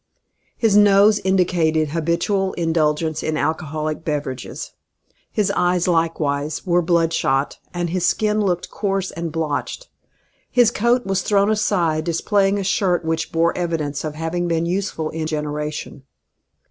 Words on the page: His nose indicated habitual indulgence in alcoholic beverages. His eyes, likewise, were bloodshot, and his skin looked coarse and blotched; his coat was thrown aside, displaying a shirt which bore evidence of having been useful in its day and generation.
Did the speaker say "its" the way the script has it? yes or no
no